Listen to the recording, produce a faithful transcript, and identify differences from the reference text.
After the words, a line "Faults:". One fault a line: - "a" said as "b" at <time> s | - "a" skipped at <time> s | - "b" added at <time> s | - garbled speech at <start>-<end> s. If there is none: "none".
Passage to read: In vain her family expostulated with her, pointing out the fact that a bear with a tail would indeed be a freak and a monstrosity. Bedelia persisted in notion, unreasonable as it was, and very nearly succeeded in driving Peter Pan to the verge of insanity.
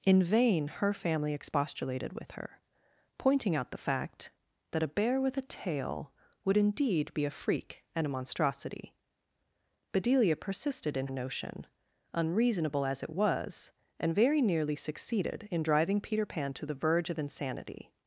In vain her family expostulated with her, pointing out the fact that a bear with a tail would indeed be a freak and a monstrosity. Bedelia persisted in notion, unreasonable as it was, and very nearly succeeded in driving Peter Pan to the verge of insanity.
Faults:
none